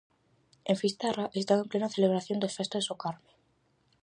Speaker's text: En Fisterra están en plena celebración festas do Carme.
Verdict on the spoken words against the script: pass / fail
fail